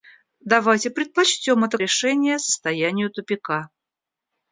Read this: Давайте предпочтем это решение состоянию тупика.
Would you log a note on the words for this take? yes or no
no